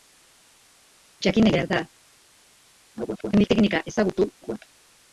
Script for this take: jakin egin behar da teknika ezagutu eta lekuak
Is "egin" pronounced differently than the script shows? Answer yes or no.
yes